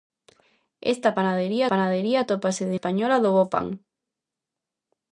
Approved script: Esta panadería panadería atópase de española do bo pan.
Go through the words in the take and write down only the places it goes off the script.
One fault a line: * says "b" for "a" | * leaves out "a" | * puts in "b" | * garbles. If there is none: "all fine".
all fine